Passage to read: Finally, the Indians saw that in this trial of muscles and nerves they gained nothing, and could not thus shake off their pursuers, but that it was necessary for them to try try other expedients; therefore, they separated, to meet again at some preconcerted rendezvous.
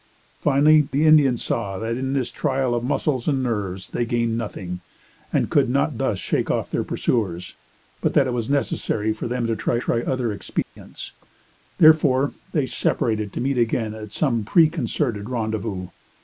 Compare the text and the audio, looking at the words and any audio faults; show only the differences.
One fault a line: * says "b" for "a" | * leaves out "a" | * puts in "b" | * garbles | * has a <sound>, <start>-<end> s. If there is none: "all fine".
* has a dropout, 10.6-10.8 s